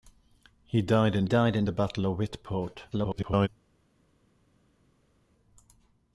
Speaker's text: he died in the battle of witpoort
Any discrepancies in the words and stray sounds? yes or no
yes